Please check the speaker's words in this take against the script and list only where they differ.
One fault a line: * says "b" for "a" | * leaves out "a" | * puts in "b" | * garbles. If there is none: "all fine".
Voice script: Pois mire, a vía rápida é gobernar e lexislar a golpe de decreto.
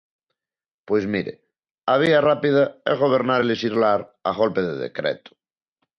all fine